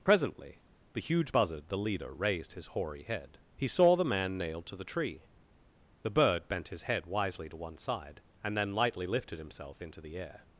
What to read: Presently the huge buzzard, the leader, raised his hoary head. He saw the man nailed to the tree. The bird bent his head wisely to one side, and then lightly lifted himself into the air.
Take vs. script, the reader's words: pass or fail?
pass